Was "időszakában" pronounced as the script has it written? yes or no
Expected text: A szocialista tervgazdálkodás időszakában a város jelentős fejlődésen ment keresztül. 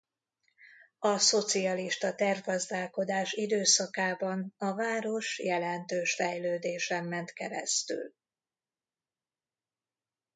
yes